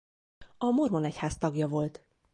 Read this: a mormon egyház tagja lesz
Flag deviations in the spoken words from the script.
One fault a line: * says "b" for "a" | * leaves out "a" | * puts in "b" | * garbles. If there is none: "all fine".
* says "volt" for "lesz"